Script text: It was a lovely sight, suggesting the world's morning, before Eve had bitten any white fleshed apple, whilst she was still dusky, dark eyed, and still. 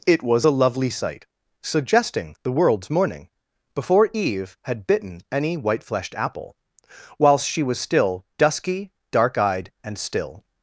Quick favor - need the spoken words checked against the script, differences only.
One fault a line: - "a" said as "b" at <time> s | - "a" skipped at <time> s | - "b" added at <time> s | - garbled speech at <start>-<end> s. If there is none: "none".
none